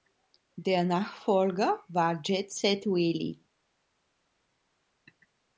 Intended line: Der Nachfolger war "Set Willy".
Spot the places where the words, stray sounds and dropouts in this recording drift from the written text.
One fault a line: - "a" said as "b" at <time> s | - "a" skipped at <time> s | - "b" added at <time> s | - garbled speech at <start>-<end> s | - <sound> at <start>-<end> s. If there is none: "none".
- "Jet" added at 2.2 s